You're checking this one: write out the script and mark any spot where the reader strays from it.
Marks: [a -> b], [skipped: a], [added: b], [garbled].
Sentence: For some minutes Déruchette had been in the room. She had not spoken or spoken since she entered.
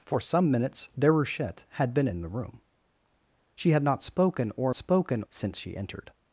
For some minutes Déruchette had been in the room. She had not spoken or spoken since she entered.